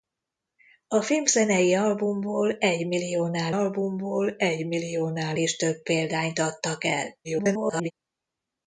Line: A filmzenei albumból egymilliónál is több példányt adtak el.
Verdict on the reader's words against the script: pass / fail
fail